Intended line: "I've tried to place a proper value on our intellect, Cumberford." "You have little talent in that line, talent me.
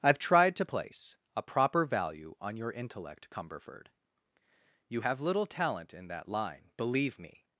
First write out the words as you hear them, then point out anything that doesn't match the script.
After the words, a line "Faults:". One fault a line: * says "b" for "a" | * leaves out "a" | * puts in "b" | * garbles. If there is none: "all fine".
"I've tried to place a proper value on your intellect, Cumberford." "You have little talent in that line, believe me.
Faults:
* says "your" for "our"
* says "believe" for "talent"